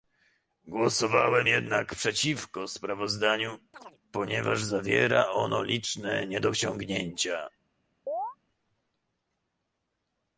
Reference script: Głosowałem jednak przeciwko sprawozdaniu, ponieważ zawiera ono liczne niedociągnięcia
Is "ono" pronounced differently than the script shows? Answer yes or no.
no